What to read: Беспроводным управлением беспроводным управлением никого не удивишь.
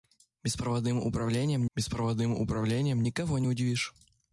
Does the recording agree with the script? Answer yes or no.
yes